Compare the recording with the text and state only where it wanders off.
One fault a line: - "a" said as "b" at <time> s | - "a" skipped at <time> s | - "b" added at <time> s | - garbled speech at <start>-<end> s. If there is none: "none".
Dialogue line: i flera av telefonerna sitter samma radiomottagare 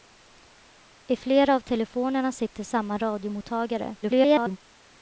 - garbled speech at 4.0-4.6 s